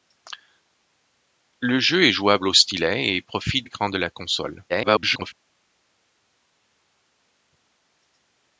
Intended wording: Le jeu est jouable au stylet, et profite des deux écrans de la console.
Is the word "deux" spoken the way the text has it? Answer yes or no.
no